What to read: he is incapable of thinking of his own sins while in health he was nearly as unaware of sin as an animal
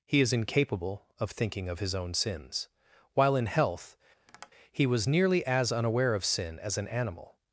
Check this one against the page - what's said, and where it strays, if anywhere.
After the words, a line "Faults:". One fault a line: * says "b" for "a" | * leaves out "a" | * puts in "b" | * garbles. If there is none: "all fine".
he is incapable of thinking of his own sins while in health he was nearly as unaware of sin as an animal
Faults:
all fine